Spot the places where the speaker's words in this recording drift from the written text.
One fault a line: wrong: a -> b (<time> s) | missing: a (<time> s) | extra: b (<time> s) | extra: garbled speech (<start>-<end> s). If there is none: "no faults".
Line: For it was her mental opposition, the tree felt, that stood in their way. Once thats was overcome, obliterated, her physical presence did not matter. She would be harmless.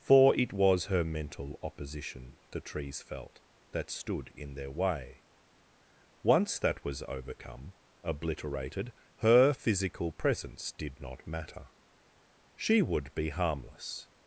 wrong: tree -> trees (2.6 s)
wrong: thats -> that (6.6 s)